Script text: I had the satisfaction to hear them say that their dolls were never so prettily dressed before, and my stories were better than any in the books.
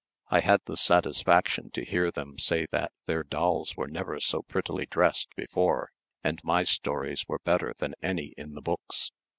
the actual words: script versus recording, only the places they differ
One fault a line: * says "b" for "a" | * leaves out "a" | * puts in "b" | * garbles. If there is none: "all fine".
all fine